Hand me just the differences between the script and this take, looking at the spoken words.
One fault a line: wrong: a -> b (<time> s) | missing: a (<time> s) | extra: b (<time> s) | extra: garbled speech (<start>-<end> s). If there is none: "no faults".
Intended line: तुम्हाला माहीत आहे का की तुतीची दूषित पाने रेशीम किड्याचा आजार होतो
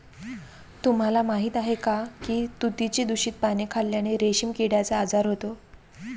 extra: खाल्ल्याने (3.7 s)